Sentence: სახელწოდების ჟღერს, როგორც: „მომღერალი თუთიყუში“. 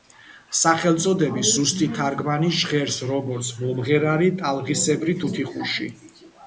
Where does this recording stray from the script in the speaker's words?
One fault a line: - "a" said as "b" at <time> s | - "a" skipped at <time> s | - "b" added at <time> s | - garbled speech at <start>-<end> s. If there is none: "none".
- "ზუსტი თარგმანი" added at 1.6 s
- "ტალღისებრი" added at 4.4 s